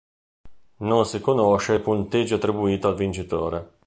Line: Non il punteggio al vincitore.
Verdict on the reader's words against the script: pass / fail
fail